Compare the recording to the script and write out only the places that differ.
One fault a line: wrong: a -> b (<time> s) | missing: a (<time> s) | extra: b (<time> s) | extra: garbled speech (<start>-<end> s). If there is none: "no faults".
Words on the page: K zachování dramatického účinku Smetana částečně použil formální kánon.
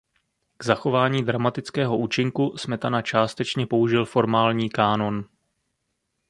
no faults